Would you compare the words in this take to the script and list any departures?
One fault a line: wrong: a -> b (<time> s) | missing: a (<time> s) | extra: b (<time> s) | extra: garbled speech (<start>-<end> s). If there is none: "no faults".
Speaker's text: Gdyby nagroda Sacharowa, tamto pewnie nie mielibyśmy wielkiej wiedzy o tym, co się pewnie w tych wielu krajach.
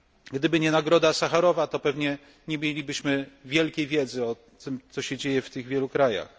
extra: nie (0.6 s)
wrong: tamto -> to (1.7 s)
wrong: pewnie -> dzieje (5.2 s)